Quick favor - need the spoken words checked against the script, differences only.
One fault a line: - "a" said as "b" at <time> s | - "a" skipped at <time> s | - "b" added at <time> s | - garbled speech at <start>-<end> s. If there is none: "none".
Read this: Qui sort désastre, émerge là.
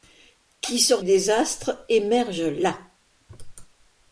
none